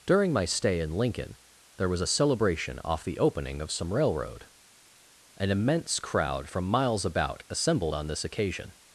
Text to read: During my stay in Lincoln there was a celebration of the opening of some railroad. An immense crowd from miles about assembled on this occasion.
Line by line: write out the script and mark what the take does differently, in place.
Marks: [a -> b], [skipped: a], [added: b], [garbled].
During my stay in Lincoln there was a celebration [of -> off] the opening of some railroad. An immense crowd from miles about assembled on this occasion.